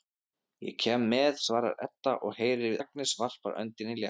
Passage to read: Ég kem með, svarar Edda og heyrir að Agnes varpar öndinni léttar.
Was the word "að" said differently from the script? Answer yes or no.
yes